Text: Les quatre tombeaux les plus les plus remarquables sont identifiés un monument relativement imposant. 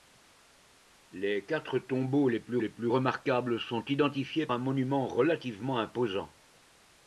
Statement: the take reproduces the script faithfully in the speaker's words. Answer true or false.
true